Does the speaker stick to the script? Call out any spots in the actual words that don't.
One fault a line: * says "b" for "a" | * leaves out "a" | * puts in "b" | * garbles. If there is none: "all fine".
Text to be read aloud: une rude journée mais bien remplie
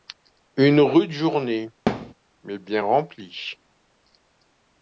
all fine